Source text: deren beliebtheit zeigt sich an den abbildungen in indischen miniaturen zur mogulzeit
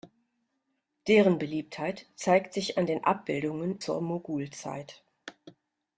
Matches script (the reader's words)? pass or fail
fail